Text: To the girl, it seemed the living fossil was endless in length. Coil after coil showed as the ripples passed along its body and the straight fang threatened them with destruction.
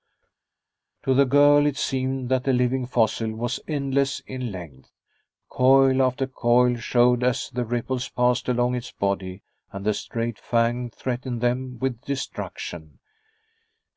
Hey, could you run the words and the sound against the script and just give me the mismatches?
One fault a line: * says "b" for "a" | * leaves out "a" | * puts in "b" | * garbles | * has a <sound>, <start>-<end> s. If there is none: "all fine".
* puts in "that"